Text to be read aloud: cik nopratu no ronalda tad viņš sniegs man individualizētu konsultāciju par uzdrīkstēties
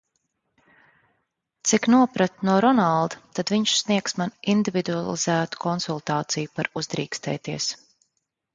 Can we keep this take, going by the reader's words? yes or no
yes